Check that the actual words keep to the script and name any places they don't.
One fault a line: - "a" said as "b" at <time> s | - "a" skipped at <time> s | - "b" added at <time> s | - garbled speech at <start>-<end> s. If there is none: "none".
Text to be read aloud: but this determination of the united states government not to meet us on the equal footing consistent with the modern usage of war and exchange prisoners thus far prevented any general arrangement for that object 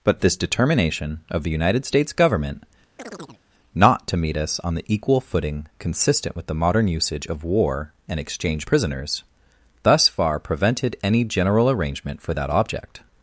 none